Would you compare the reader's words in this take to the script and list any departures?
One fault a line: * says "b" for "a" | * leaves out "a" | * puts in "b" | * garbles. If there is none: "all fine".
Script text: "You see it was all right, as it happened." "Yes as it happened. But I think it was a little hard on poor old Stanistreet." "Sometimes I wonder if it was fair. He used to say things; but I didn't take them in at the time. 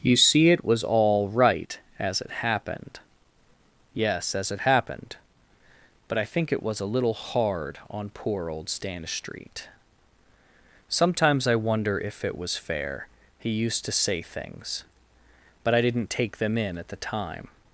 all fine